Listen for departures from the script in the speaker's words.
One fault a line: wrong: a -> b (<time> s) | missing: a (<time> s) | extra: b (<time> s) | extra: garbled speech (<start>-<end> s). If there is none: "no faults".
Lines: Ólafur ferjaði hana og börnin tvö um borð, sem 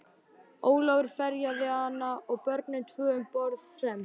no faults